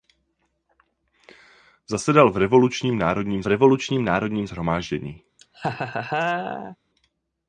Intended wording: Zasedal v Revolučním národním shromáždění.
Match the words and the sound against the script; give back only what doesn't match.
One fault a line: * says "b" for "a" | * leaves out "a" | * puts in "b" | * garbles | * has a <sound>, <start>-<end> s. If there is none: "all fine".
* puts in "Revolučním národním"
* has a laugh, 5.4-6.8 s